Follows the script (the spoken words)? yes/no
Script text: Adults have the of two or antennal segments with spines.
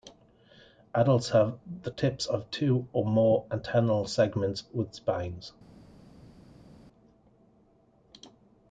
no